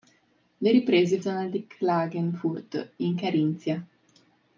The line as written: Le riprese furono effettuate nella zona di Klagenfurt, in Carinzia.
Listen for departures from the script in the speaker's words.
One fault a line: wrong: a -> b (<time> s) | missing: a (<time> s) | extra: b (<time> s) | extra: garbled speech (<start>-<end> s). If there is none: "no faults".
missing: furono effettuate nella (1.2 s)